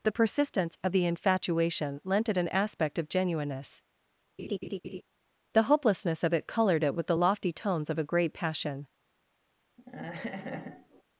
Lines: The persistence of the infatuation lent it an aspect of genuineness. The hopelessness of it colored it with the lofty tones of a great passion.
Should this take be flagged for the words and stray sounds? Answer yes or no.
yes